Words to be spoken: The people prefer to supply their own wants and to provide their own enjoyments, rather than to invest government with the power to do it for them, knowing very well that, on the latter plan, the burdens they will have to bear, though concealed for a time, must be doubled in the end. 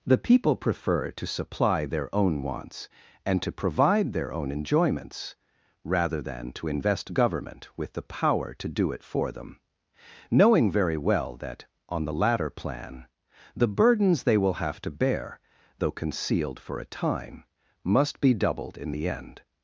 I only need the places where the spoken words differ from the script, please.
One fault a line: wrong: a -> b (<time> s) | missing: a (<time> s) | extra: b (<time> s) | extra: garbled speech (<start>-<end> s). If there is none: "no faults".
no faults